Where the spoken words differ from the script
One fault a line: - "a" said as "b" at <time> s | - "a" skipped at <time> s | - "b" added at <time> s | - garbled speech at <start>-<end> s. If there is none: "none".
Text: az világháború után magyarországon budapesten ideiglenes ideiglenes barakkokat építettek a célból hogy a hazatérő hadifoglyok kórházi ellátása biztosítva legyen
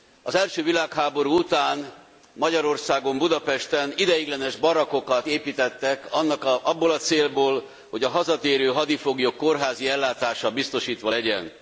- "első" added at 0.3 s
- "ideiglenes" skipped at 4.5 s
- "abból" added at 6.6 s